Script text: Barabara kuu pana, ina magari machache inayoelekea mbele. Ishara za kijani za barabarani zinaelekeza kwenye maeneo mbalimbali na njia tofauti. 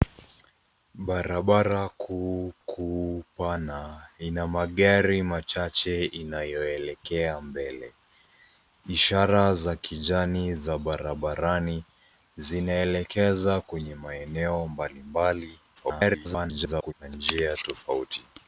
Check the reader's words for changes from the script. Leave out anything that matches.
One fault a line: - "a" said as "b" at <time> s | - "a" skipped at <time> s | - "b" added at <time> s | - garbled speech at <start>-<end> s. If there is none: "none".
- "kuu" added at 2.6 s
- garbled speech at 15.7-16.9 s